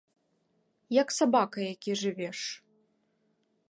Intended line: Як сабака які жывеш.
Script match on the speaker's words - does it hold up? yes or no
yes